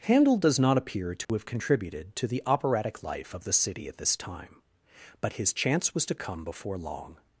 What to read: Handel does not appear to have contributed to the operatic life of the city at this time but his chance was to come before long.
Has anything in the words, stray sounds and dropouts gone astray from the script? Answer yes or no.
yes